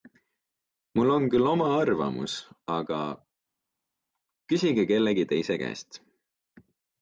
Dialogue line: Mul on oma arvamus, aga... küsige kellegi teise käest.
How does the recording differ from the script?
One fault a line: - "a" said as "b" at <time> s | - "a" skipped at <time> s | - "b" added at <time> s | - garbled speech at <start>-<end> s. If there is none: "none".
- "küll" added at 1.4 s